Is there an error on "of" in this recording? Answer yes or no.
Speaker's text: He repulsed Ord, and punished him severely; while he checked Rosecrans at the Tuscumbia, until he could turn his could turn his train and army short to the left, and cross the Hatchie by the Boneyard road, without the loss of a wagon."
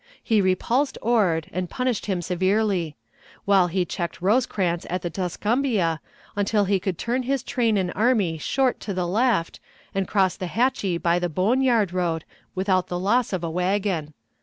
no